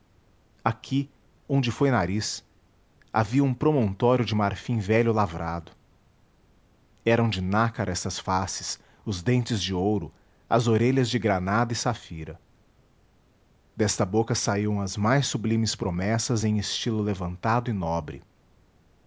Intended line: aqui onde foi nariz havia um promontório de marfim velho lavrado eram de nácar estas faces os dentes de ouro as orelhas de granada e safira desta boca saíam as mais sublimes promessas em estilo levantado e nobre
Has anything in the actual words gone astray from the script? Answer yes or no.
no